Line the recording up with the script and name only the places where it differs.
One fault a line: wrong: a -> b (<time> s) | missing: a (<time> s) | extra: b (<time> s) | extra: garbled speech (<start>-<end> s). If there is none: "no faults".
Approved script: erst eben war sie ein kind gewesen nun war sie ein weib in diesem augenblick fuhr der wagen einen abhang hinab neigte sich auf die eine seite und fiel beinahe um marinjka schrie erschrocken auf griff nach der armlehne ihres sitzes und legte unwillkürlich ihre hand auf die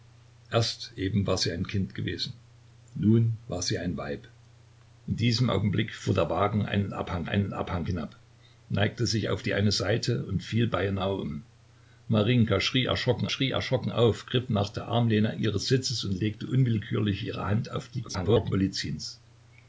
extra: einen abhang (7.3 s)
extra: schrie erschrocken (13.3 s)
extra: garbled speech (18.1-18.5 s)